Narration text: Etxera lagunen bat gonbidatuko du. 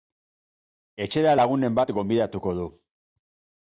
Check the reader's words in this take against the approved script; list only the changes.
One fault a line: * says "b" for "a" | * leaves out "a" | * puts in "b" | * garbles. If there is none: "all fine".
all fine